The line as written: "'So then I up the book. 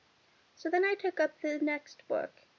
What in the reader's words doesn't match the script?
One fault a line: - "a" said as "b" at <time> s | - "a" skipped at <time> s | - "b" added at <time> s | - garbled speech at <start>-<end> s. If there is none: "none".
- "took" added at 0.9 s
- "next" added at 1.6 s